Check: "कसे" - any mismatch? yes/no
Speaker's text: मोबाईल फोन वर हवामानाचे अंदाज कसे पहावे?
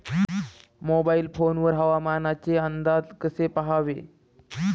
no